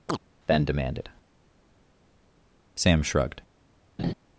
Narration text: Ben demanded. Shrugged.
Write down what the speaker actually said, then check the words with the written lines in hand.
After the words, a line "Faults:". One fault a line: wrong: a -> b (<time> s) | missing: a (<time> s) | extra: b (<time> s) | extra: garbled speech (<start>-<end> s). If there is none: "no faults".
Ben demanded. Sam shrugged.
Faults:
extra: Sam (2.7 s)